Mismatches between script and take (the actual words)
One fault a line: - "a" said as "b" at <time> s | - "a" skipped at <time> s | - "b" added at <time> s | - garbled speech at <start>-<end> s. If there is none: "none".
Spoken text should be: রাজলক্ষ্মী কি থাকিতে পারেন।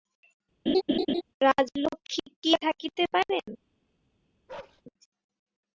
none